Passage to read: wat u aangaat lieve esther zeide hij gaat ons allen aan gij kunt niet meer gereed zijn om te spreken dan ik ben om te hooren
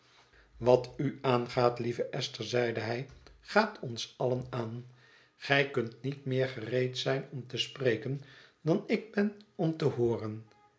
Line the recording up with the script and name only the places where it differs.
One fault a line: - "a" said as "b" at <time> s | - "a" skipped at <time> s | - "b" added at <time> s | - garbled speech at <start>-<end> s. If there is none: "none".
none